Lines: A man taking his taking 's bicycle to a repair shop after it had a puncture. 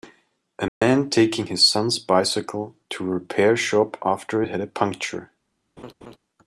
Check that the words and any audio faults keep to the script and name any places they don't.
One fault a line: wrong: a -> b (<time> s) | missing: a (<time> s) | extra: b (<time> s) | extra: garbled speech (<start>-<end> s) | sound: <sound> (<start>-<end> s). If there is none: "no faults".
sound: dropout (0.7-0.8 s)
wrong: taking -> son (1.7 s)
sound: laugh (5.8-6.2 s)